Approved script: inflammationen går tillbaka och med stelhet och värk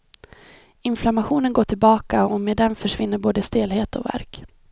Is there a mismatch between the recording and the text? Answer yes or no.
yes